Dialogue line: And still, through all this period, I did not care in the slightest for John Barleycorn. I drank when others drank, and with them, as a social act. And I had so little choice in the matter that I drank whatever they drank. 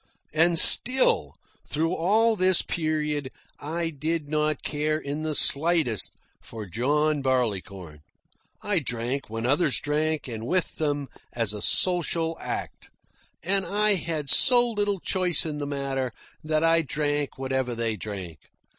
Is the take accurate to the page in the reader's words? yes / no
yes